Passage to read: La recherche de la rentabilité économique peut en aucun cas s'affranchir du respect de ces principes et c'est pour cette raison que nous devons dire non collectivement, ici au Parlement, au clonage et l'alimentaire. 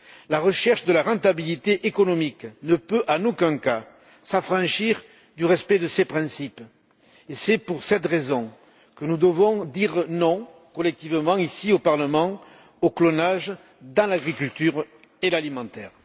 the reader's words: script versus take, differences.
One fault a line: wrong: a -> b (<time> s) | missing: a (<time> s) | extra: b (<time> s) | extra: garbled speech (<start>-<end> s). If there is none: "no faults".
extra: ne (2.6 s)
extra: dans l'agriculture (13.8 s)